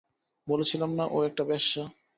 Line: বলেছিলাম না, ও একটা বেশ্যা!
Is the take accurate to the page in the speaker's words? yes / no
yes